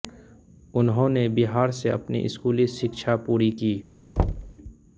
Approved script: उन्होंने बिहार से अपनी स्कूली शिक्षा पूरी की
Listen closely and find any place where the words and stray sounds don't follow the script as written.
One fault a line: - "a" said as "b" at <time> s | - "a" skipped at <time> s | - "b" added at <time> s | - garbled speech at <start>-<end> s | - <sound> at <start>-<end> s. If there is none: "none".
- thud at 4.2-4.5 s